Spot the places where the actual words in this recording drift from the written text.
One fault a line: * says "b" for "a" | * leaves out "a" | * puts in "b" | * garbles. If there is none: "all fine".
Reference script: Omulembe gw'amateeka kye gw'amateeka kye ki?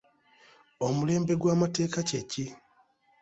* leaves out "gw'amateeka kye"